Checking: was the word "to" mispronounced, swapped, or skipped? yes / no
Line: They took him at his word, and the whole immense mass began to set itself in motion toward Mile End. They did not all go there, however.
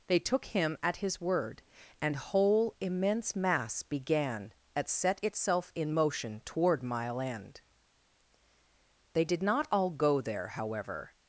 yes